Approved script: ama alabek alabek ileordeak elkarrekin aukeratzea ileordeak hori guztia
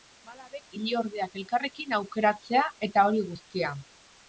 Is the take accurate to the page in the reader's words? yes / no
no